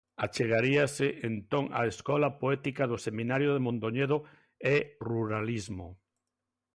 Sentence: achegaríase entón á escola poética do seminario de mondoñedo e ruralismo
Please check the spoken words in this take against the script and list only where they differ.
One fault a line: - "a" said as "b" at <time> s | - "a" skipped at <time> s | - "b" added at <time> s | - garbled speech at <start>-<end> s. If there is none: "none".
none